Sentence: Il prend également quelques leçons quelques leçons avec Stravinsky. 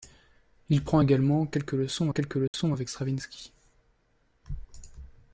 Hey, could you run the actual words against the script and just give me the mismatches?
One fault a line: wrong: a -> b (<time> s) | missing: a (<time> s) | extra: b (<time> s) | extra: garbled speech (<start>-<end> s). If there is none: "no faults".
no faults